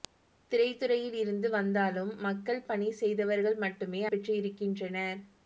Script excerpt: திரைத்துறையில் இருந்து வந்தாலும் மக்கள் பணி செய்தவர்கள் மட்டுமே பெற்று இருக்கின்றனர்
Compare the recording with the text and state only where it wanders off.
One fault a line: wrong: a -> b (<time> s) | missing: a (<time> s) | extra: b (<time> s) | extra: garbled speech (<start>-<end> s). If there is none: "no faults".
no faults